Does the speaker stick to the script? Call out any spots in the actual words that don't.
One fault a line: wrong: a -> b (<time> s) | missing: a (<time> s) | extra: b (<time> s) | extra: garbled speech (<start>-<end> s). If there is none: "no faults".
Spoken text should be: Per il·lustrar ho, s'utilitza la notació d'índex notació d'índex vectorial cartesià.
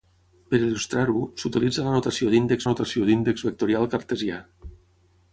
no faults